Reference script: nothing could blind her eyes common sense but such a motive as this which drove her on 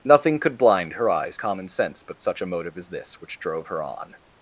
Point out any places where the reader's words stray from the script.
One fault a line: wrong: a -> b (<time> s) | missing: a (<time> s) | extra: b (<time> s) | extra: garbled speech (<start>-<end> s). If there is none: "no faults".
no faults